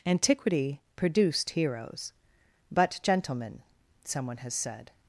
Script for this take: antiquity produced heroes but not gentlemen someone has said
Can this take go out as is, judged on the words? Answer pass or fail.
fail